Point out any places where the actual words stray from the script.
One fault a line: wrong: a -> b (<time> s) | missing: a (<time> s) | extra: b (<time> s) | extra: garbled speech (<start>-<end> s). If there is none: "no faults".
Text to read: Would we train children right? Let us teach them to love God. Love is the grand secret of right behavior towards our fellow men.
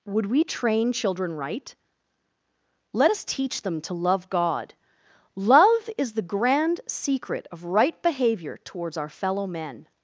no faults